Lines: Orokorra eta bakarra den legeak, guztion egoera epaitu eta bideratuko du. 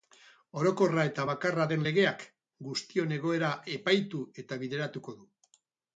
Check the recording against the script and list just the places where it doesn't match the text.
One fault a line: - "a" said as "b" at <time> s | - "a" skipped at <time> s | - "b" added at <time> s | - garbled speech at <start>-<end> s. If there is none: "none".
none